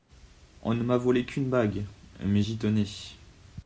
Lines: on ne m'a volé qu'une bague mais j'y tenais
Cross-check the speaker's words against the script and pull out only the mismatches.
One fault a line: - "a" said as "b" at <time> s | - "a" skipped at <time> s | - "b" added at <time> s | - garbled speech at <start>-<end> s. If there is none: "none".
none